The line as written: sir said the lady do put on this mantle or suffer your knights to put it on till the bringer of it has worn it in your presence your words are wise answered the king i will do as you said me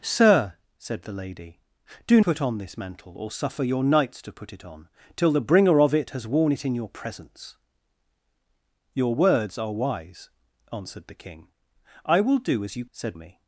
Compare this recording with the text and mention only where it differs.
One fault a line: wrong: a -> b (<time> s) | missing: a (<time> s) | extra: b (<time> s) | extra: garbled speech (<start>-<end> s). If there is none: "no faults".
no faults